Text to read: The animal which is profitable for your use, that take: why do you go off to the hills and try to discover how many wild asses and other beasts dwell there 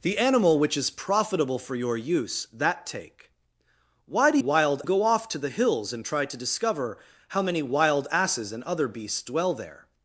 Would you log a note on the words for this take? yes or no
yes